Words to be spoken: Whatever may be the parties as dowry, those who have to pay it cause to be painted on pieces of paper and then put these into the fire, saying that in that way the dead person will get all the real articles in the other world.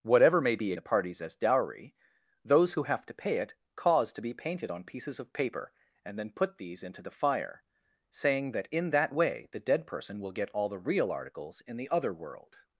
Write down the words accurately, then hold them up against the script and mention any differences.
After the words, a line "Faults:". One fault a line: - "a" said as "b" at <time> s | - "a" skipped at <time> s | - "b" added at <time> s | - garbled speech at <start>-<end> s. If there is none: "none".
Whatever may be the parties as dowry, those who have to pay it cause to be painted on pieces of paper and then put these into the fire, saying that in that way the dead person will get all the real articles in the other world.
Faults:
none